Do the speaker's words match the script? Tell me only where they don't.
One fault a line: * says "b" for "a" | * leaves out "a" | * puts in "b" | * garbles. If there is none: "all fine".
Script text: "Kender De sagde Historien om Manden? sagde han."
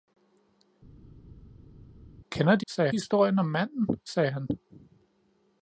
all fine